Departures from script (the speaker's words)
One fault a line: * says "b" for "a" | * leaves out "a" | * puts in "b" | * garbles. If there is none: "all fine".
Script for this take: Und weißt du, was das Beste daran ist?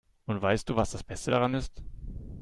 all fine